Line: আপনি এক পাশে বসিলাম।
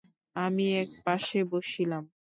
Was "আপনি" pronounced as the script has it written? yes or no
no